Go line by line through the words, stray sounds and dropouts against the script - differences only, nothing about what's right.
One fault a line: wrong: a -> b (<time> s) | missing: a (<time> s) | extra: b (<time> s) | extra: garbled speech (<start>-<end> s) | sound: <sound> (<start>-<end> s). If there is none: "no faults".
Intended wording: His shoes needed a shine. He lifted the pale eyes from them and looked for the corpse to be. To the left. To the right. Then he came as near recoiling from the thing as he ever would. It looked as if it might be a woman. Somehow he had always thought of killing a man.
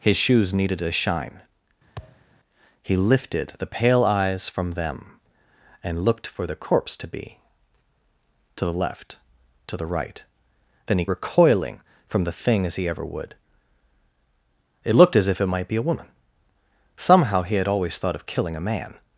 sound: thud (2.0-2.3 s)
missing: came as near (11.1 s)